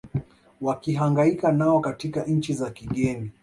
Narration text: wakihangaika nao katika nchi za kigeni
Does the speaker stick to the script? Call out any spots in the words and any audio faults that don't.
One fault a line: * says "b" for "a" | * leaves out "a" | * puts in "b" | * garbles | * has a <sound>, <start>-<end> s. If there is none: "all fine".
all fine